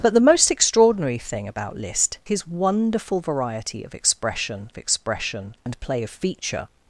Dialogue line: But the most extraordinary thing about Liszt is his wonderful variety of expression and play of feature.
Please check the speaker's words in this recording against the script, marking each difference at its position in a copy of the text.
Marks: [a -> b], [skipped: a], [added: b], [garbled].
But the most extraordinary thing about Liszt [skipped: is] his wonderful variety of expression [added: expression] and play of feature.